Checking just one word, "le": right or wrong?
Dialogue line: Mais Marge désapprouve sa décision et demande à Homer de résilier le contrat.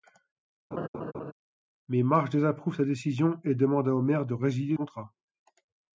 wrong